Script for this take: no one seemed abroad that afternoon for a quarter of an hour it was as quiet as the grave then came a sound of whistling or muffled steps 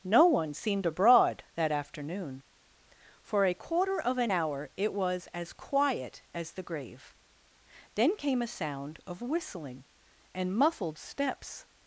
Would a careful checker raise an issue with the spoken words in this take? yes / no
yes